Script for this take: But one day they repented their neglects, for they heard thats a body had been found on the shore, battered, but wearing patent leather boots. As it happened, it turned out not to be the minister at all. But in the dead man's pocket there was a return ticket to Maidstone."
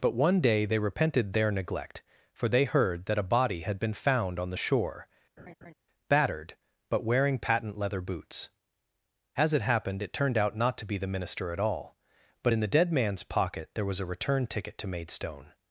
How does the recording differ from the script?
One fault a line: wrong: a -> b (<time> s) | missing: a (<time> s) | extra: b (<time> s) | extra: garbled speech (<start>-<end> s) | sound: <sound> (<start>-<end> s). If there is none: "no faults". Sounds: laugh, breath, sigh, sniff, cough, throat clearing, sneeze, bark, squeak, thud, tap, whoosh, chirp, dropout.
wrong: neglects -> neglect (1.5 s)
wrong: thats -> that (3.0 s)
sound: laugh (5.4-5.7 s)